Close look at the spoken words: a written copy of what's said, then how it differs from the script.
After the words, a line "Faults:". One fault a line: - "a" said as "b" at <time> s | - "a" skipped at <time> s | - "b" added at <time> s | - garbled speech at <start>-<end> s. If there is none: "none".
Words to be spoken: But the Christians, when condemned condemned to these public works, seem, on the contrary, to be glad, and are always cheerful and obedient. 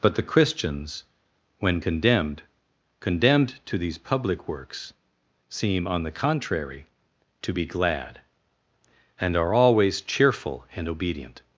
But the Christians, when condemned condemned to these public works, seem, on the contrary, to be glad, and are always cheerful and obedient.
Faults:
none